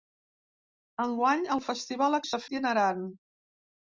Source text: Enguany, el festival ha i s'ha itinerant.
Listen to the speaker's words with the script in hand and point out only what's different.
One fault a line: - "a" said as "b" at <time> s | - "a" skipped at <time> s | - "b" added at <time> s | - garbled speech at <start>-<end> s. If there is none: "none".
none